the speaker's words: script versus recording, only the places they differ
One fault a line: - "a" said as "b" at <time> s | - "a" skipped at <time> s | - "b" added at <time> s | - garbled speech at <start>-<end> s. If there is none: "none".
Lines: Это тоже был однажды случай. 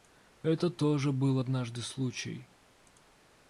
none